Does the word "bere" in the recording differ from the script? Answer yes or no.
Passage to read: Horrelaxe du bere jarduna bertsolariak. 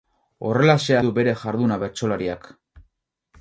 no